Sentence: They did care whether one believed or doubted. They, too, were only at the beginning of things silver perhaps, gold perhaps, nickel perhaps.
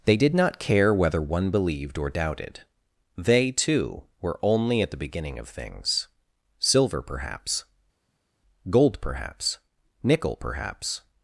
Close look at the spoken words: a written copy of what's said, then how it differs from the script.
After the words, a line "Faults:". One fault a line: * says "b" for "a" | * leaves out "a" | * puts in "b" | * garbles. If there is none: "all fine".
They did not care whether one believed or doubted. They, too, were only at the beginning of things silver perhaps, gold perhaps, nickel perhaps.
Faults:
* puts in "not"